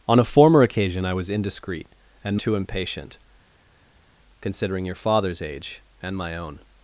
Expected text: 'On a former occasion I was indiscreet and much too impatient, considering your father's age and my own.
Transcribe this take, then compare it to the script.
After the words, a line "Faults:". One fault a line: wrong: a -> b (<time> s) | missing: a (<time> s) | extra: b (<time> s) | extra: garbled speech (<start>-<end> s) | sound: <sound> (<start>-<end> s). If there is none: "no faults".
'On a former occasion I was indiscreet and too impatient, considering your father's age and my own.
Faults:
missing: much (2.4 s)